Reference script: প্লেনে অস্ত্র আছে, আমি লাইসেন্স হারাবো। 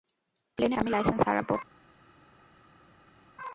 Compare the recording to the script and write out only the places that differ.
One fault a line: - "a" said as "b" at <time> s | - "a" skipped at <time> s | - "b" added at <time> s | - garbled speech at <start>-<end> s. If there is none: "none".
- "অস্ত্র আছে" skipped at 0.8 s